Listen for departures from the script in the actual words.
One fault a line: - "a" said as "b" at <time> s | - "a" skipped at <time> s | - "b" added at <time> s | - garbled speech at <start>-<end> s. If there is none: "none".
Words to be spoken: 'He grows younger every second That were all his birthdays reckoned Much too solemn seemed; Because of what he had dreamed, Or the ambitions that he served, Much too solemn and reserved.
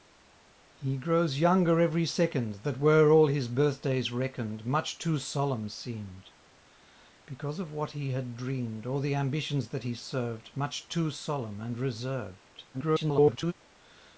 - garbled speech at 12.7-13.5 s